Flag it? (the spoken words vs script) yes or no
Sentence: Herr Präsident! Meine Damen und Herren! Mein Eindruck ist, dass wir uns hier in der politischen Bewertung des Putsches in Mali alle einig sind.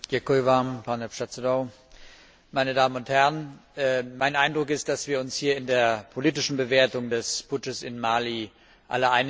no